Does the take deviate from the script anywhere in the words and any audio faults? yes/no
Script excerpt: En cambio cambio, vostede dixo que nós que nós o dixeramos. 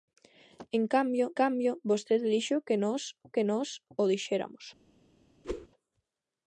yes